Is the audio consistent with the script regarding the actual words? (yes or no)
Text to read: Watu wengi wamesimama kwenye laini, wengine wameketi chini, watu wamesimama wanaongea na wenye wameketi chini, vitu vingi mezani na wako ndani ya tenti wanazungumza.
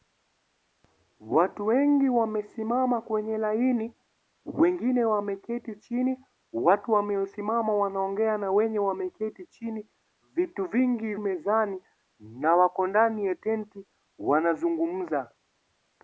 yes